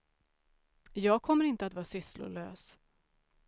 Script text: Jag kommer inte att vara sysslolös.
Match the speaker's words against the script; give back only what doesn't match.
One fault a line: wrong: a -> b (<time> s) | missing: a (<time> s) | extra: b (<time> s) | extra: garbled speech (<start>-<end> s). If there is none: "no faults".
no faults